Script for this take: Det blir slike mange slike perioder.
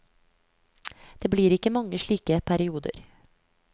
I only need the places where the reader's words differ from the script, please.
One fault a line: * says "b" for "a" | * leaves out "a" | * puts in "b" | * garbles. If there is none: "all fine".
* says "ikke" for "slike"